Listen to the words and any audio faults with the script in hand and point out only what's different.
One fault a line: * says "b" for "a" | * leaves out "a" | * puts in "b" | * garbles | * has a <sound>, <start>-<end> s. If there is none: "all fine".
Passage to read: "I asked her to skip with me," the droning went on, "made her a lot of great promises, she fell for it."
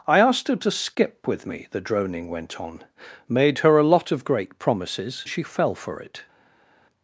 all fine